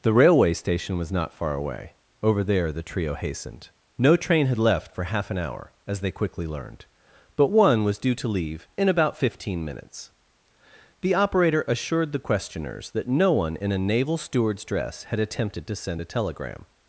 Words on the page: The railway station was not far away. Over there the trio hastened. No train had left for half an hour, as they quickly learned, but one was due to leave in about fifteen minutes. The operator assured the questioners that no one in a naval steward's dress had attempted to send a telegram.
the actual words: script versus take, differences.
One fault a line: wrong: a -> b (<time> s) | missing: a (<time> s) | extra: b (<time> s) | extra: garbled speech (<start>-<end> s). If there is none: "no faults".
no faults